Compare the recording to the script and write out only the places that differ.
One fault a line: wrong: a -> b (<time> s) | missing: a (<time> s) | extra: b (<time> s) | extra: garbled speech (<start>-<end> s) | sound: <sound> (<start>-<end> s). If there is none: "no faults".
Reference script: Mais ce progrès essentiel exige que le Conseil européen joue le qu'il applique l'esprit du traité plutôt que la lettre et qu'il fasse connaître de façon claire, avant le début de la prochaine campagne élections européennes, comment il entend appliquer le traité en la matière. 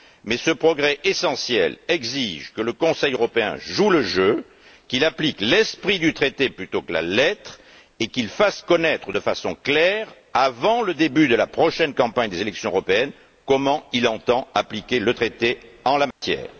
extra: jeu (4.0 s)
extra: des (12.3 s)
sound: dropout (16.1-16.2 s)